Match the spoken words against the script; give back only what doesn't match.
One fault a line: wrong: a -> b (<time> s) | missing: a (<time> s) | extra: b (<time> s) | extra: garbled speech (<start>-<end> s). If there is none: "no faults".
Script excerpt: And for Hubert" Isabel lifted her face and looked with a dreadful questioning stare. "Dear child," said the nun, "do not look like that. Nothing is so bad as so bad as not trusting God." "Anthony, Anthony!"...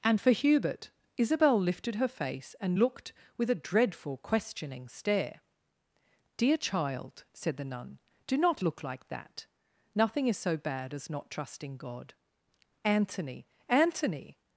missing: so bad as (11.1 s)